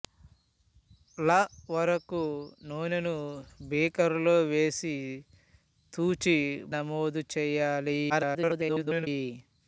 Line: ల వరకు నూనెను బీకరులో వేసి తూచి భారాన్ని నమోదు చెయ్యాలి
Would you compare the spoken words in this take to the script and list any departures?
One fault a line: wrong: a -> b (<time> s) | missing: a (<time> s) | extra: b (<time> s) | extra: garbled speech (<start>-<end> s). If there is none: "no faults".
missing: భారాన్ని (6.4 s)
extra: garbled speech (8.1-9.1 s)